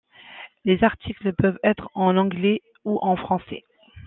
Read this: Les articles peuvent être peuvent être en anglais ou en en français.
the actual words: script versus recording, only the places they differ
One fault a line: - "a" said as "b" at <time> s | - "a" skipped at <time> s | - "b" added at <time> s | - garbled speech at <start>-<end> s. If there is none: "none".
- "peuvent être" skipped at 1.9 s
- "en" skipped at 3.2 s